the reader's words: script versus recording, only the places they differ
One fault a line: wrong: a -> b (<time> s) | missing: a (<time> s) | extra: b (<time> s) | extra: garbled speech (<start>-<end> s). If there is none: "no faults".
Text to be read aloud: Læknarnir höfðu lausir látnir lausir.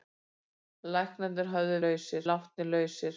no faults